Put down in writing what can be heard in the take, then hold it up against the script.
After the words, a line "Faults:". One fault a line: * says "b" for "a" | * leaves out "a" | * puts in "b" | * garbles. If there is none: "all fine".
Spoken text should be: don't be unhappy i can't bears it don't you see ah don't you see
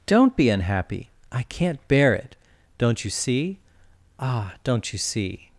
don't be unhappy i can't bear it don't you see ah don't you see
Faults:
* says "bear" for "bears"